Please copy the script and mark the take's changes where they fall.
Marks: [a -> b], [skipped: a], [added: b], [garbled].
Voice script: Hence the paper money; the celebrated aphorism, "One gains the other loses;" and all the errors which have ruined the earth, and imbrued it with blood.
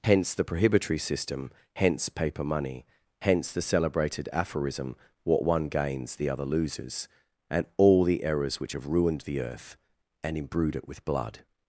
Hence the [added: prohibitory system hence] paper money; [added: hence] the celebrated aphorism, [added: What] "One gains the other loses;" and all the errors which have ruined the earth, and imbrued it with blood.